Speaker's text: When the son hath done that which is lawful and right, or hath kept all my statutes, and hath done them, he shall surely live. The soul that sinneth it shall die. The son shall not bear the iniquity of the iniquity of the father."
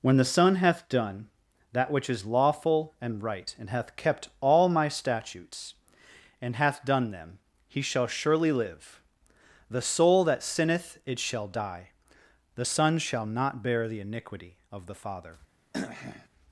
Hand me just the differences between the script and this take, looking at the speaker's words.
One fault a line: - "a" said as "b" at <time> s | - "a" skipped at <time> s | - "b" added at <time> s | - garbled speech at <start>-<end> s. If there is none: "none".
- "or" said as "and" at 3.6 s
- "iniquity of the" skipped at 15.0 s